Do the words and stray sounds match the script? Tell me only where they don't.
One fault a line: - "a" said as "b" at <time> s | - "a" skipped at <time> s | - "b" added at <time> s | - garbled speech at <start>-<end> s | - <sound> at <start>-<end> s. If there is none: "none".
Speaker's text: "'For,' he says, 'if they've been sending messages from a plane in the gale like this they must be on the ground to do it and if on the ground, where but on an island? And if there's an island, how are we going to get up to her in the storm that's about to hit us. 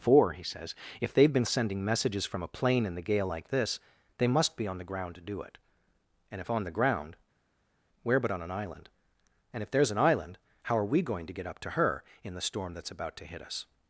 none